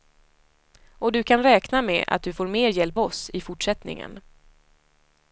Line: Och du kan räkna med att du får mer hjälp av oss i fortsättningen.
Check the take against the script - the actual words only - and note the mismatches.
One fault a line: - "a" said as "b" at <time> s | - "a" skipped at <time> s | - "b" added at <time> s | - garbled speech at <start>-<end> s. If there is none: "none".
- "av" skipped at 3.0 s